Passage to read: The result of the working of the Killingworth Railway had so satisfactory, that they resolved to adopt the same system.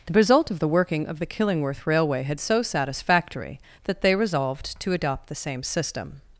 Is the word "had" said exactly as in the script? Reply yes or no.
yes